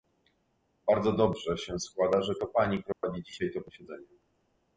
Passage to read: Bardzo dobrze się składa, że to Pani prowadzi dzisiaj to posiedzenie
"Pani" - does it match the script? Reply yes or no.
yes